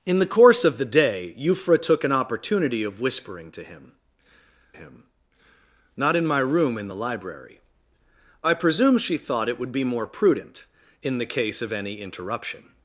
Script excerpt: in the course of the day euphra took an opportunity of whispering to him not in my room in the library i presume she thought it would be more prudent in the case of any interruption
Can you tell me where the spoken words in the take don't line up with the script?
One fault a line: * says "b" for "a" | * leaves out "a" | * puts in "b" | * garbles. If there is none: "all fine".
* puts in "him"